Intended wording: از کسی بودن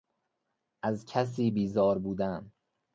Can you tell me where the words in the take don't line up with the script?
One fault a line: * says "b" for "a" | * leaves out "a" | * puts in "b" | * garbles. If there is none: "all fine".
* puts in "بیزار"